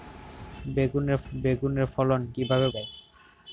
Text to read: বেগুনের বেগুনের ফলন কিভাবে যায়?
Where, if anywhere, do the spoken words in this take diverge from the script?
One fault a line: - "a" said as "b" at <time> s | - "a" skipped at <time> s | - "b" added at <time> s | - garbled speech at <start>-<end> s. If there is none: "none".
none